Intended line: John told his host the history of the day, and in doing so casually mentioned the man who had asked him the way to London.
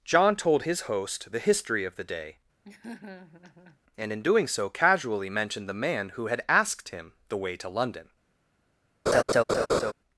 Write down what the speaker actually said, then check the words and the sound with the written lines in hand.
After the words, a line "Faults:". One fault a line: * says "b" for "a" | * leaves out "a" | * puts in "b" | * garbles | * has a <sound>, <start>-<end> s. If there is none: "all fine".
John told his host the history of the day, and in doing so casually mentioned the man who had asked him the way to London.
Faults:
* has a laugh, 2.6-3.8 s
* has a laugh, 9.1-9.9 s